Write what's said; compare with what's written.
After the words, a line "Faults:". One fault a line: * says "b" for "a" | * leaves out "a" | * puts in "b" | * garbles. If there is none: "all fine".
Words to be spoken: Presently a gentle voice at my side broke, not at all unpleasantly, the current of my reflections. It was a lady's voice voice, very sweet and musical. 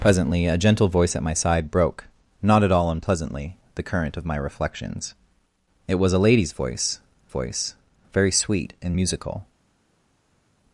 Presently a gentle voice at my side broke, not at all unpleasantly, the current of my reflections. It was a lady's voice voice, very sweet and musical.
Faults:
all fine